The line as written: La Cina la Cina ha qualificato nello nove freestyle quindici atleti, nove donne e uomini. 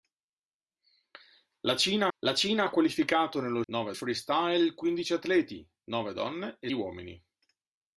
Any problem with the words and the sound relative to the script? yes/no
no